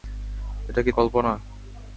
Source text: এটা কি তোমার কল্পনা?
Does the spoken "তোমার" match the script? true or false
false